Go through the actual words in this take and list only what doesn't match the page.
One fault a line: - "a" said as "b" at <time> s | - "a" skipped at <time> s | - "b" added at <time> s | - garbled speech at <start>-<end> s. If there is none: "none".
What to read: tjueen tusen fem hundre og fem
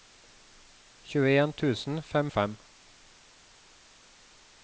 - "hundre" skipped at 2.3 s